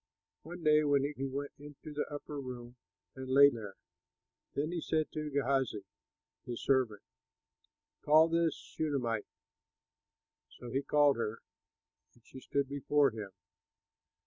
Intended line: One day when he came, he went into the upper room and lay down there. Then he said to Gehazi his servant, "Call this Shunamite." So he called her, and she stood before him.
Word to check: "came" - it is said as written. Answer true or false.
false